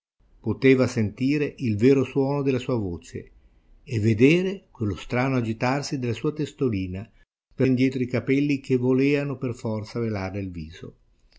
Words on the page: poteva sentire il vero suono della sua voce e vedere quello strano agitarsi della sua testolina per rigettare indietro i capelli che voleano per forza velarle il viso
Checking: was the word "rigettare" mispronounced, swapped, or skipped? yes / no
yes